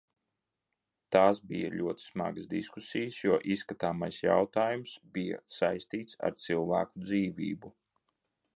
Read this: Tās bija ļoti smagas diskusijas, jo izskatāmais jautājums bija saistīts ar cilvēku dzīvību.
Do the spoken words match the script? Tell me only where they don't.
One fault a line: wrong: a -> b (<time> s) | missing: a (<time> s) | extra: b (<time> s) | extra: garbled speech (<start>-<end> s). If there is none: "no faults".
no faults